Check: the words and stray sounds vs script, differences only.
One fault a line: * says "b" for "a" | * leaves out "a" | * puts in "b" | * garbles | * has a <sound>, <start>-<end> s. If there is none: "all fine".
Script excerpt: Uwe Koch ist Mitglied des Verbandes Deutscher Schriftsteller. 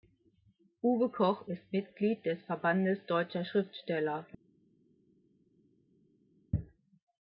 all fine